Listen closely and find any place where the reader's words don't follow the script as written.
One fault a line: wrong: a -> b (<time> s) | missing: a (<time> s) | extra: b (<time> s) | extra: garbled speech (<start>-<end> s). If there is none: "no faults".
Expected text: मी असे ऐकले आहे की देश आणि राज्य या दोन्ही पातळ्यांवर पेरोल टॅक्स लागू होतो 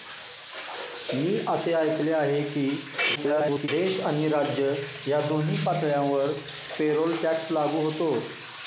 extra: garbled speech (3.1-3.7 s)